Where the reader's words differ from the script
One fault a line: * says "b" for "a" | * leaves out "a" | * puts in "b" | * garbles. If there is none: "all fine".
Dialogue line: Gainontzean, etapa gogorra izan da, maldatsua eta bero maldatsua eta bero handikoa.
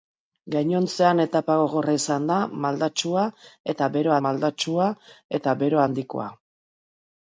all fine